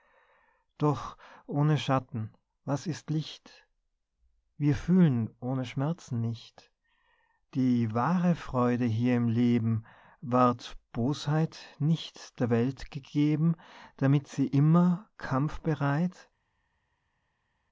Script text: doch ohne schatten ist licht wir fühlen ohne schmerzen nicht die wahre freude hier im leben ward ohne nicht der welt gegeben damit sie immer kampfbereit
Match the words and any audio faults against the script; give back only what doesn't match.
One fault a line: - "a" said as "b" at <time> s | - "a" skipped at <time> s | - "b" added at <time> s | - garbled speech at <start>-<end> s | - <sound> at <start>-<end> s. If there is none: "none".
- "was" added at 2.6 s
- "ohne" said as "bosheit" at 10.9 s